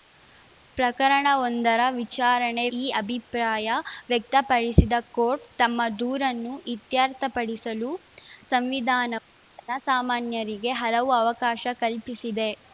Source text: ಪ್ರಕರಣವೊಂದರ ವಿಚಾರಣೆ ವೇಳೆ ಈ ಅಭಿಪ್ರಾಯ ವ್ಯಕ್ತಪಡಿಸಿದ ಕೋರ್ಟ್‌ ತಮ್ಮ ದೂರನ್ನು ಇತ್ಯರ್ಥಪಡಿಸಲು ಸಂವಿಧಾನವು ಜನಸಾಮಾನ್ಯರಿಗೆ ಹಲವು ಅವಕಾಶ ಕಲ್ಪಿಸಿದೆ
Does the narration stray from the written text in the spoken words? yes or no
yes